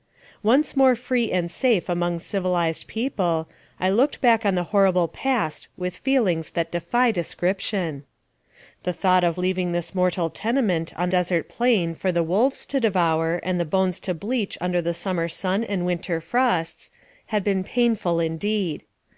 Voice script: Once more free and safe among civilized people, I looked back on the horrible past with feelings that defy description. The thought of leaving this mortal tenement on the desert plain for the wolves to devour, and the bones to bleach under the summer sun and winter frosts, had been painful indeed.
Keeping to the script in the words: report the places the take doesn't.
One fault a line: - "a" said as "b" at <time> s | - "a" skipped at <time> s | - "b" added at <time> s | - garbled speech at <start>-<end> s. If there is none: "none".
- "the" skipped at 11.1 s